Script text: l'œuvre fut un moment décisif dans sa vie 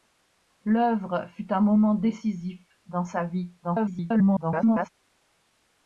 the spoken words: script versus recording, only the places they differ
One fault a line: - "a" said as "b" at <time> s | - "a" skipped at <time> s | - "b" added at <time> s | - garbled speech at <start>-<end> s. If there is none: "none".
- garbled speech at 3.6-4.9 s